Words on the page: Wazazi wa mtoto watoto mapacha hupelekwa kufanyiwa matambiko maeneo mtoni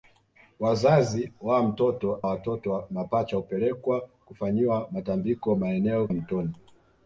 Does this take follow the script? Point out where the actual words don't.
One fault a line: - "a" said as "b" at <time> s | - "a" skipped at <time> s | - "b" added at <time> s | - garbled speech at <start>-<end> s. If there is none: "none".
none